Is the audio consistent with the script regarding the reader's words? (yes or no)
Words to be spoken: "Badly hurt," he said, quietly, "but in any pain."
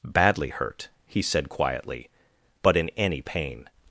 yes